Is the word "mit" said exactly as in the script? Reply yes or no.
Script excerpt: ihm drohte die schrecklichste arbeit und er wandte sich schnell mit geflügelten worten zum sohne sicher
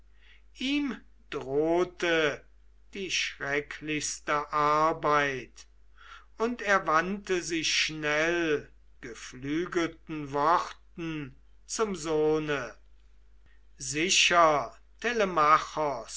no